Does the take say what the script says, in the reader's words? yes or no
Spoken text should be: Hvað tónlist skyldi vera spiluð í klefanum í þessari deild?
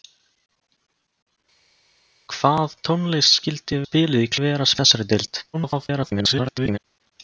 no